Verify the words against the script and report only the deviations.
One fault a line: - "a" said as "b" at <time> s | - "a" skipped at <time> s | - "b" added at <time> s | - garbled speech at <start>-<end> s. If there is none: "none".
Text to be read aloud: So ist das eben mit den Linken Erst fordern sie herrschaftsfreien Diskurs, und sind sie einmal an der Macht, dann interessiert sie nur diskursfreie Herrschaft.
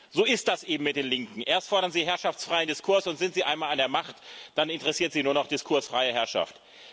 - "noch" added at 5.3 s